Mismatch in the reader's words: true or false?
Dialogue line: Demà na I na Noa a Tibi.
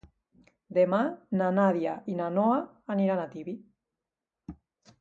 true